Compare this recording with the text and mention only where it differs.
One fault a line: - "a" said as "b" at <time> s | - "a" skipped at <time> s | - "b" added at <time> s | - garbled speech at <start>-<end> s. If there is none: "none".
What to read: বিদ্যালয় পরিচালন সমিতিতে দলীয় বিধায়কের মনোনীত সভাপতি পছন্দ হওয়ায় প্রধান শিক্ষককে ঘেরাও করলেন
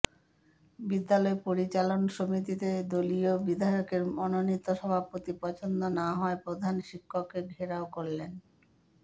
- "না" added at 6.0 s